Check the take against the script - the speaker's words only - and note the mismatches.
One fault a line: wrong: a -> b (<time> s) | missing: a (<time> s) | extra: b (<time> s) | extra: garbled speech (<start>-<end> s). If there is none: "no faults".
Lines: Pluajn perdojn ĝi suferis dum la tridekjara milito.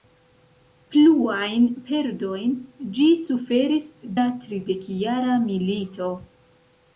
missing: dum (3.9 s)